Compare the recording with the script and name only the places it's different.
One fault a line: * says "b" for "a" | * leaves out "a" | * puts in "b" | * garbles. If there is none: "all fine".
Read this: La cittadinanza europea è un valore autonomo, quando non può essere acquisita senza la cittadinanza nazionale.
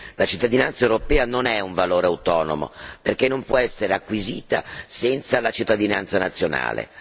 * puts in "non"
* says "perché" for "quando"